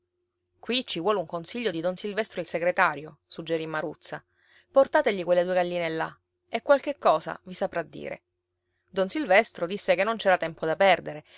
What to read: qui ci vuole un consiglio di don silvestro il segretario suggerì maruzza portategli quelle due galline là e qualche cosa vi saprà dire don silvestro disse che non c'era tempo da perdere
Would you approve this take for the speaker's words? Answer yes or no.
yes